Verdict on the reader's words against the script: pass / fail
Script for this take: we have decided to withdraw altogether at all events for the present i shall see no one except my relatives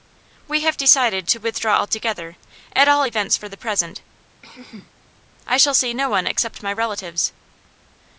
pass